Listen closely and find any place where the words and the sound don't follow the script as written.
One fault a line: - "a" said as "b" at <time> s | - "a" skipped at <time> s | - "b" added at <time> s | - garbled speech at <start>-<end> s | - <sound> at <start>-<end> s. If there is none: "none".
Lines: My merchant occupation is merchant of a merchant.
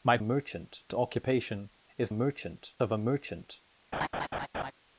- laugh at 3.9-4.7 s